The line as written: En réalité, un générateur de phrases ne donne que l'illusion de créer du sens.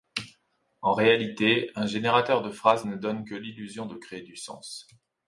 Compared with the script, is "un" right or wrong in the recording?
right